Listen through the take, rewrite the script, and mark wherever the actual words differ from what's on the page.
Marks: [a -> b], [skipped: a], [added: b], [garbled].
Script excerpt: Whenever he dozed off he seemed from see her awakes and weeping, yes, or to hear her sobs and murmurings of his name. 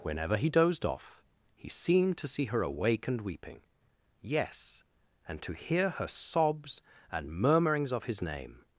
Whenever he dozed off he seemed [from -> to] see her [awakes -> awake] and weeping, yes, [or -> and] to hear her sobs and murmurings of his name.